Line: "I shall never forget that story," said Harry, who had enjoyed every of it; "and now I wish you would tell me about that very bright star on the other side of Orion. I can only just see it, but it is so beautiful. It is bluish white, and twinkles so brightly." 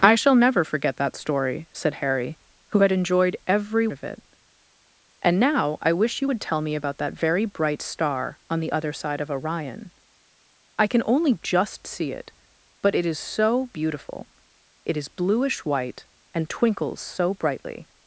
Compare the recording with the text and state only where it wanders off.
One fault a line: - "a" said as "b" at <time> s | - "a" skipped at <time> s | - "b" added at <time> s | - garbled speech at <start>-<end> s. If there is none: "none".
none